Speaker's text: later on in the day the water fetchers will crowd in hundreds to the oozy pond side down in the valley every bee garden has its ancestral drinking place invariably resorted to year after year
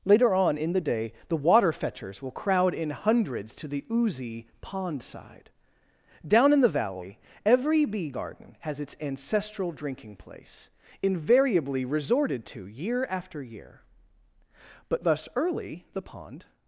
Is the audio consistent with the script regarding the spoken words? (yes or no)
no